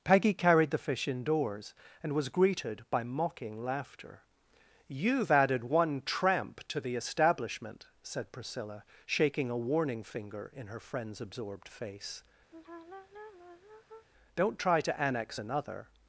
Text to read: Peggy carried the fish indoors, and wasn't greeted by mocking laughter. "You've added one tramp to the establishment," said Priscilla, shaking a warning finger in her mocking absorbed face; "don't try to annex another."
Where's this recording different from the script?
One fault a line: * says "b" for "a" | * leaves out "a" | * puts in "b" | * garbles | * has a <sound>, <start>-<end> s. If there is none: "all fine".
* says "was" for "wasn't"
* says "friend's" for "mocking"
* has a sigh, 12.5-14.1 s